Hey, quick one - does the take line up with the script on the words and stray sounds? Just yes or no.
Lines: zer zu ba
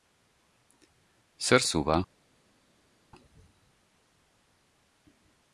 yes